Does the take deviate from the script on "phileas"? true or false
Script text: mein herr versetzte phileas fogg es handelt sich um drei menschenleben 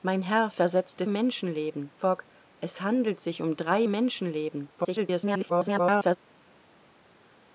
true